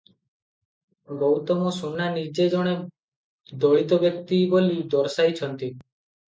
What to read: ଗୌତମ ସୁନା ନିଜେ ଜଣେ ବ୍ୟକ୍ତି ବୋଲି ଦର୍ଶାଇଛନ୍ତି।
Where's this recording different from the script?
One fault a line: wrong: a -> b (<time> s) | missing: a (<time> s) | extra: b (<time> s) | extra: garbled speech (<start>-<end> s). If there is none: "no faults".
extra: ଦଳିତ (3.5 s)